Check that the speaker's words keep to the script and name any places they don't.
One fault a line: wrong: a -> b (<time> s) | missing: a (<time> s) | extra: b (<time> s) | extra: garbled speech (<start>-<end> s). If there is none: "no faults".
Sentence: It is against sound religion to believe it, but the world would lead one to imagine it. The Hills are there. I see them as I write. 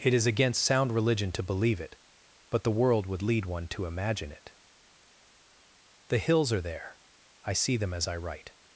no faults